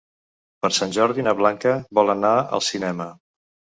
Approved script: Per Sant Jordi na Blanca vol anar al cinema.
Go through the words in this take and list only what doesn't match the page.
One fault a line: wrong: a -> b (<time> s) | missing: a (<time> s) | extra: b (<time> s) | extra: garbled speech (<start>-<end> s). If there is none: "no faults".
no faults